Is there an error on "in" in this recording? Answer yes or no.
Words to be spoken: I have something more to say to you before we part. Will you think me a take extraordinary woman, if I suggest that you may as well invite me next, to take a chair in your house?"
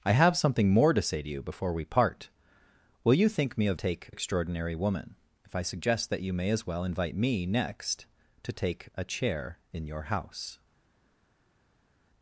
no